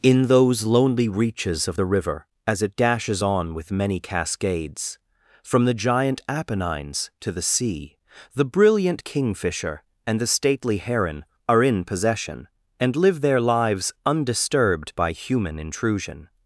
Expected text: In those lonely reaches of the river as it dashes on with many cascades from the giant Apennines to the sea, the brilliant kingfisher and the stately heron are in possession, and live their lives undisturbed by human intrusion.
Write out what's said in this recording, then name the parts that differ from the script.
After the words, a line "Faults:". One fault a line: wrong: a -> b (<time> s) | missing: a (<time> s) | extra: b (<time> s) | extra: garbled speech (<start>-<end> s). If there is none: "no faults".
In those lonely reaches of the river as it dashes on with many cascades from the giant Apennines to the sea, the brilliant kingfisher and the stately heron are in possession, and live their lives undisturbed by human intrusion.
Faults:
no faults